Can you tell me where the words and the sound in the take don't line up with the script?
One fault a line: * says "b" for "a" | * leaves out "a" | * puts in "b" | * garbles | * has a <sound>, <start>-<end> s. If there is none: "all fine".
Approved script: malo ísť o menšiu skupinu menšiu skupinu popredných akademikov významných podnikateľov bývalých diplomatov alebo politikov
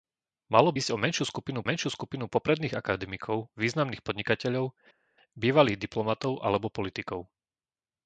all fine